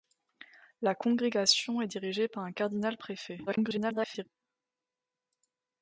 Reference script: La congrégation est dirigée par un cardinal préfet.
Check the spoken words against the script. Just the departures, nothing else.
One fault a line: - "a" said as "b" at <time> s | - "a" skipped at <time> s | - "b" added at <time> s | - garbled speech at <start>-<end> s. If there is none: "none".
- garbled speech at 3.5-4.3 s